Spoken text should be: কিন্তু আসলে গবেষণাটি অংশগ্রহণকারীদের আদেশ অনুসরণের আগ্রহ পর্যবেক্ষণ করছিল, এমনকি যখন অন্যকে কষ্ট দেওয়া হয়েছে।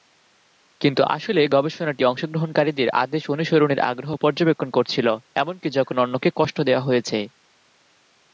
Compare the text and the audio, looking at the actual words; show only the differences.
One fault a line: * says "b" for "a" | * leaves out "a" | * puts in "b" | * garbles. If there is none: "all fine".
all fine